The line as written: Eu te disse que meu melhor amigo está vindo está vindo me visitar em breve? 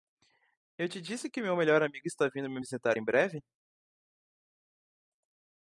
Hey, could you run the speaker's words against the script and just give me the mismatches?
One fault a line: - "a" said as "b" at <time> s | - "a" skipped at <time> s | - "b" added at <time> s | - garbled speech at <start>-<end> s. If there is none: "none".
- "está vindo" skipped at 2.5 s